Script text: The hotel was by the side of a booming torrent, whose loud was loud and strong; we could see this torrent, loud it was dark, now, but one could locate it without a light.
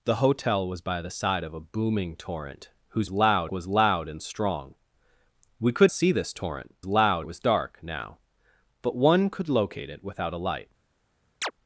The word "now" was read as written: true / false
true